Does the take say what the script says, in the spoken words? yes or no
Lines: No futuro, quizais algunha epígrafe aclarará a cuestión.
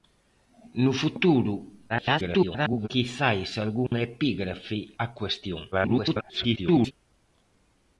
no